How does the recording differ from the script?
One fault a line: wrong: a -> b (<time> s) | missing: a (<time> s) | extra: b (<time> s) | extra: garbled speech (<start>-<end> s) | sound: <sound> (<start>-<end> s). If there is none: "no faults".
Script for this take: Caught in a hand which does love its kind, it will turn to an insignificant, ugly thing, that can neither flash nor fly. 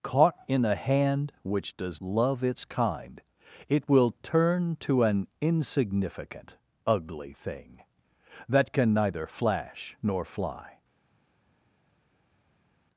no faults